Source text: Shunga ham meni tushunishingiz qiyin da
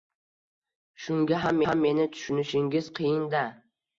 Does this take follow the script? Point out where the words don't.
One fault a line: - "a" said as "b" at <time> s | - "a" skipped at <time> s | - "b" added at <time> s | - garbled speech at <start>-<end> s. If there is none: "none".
- "ham" added at 1.7 s